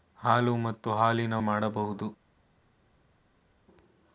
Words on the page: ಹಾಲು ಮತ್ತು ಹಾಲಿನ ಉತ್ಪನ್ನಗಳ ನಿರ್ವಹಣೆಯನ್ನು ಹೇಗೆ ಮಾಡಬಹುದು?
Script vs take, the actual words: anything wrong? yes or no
yes